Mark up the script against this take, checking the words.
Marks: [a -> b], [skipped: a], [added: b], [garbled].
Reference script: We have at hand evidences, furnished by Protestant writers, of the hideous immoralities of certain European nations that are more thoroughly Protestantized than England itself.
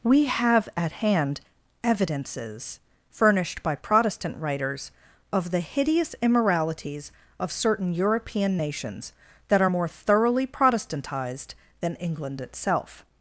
We have at hand evidences, furnished by Protestant writers, of the hideous immoralities of certain European nations that are more thoroughly Protestantized than England itself.